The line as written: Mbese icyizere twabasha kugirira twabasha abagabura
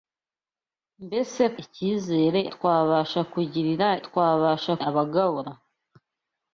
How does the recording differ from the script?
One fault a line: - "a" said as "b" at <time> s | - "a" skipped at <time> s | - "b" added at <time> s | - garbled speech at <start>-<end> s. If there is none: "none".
none